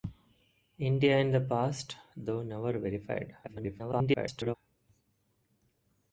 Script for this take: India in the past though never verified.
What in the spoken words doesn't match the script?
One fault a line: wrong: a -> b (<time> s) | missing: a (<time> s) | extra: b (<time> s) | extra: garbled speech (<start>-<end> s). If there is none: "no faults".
extra: garbled speech (3.4-4.6 s)